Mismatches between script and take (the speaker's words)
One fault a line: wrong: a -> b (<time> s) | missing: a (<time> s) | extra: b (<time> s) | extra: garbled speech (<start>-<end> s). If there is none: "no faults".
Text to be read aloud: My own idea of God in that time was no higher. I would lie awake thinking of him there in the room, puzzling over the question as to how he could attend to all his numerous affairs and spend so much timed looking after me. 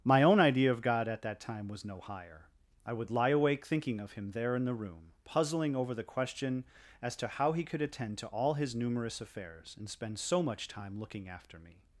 wrong: in -> at (1.1 s)
wrong: timed -> time (10.7 s)